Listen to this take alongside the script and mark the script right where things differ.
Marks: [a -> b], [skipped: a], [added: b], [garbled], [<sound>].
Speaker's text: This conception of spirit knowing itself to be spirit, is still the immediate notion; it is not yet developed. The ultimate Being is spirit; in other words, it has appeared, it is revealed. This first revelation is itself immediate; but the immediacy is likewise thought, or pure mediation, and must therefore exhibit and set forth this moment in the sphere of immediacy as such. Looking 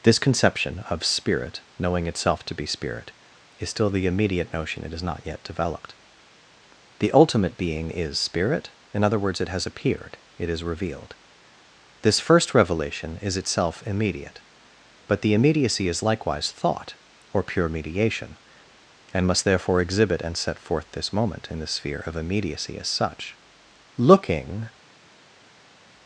This conception of spirit knowing itself to be spirit, is still the immediate notion; it is not yet developed. The ultimate Being is spirit; in other words, it has appeared, it is revealed. This first revelation is itself immediate; but the immediacy is likewise thought, or pure mediation, and must therefore exhibit and set forth this moment in the sphere of immediacy as such. Looking